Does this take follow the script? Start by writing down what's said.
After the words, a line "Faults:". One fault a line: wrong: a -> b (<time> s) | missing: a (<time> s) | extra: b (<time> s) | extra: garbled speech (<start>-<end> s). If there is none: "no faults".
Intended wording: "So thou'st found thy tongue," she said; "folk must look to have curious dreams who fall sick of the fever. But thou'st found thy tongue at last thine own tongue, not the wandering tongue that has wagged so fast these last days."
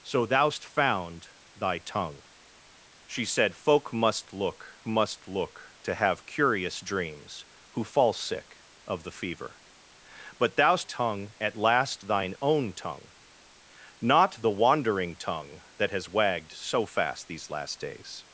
"So thou'st found thy tongue," she said; "folk must look must look to have curious dreams who fall sick of the fever. But thou'st tongue at last thine own tongue, not the wandering tongue that has wagged so fast these last days."
Faults:
extra: must look (4.9 s)
missing: found thy (10.9 s)